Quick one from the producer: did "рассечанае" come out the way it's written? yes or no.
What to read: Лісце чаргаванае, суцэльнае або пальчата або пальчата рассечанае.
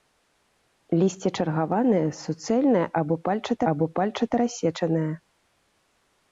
yes